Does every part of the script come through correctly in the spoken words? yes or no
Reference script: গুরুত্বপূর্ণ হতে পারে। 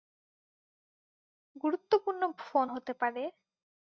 no